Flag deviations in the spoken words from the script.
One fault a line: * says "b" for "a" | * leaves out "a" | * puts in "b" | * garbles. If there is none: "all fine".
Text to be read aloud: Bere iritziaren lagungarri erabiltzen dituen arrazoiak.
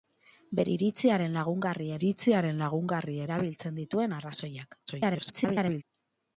* puts in "iritziaren lagungarri"
* garbles